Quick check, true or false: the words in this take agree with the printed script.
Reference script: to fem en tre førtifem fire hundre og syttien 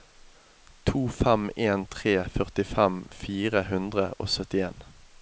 true